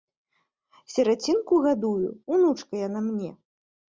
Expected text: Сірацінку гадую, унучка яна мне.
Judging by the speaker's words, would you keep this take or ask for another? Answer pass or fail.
pass